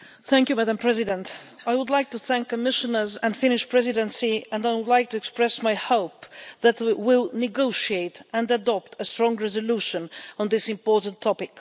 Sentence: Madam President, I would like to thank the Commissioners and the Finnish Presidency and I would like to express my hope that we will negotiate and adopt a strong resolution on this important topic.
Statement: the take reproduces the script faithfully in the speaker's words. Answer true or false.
true